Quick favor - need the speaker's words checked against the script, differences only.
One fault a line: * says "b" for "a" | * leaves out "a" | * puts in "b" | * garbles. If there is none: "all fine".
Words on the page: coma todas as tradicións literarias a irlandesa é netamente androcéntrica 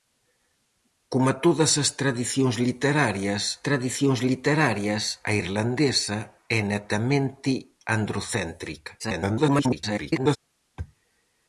* puts in "tradicións literarias"
* garbles